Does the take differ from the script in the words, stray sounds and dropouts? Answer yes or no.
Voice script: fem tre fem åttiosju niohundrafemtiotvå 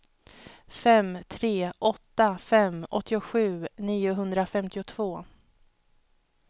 yes